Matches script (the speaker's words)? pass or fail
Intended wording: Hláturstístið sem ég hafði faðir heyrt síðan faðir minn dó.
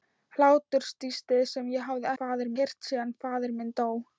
pass